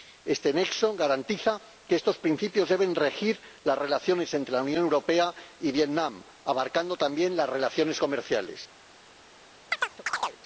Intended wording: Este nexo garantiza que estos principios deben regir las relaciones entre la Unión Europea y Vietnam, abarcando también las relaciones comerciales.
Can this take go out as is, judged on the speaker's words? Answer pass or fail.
pass